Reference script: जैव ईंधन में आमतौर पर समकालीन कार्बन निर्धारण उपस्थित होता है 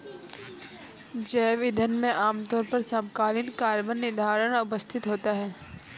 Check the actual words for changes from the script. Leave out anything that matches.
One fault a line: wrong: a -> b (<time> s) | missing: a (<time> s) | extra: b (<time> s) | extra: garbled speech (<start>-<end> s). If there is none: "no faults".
no faults